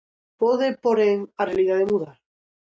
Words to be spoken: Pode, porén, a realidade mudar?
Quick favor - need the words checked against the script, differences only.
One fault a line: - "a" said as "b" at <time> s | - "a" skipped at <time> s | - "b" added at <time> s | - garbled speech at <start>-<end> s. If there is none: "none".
none